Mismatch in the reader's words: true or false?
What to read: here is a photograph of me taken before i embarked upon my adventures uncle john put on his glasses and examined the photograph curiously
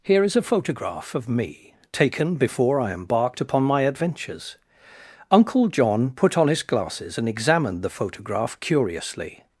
false